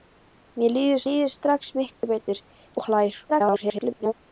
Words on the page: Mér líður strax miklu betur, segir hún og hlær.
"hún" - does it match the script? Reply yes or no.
no